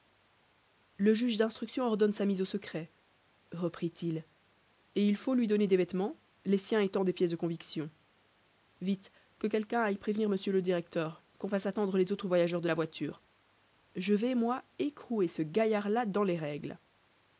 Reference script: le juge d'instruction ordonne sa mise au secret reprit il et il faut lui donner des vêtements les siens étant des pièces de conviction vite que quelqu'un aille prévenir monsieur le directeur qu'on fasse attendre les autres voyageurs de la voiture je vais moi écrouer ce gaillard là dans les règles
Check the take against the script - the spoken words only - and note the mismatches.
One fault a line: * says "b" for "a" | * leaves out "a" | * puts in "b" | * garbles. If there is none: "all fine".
all fine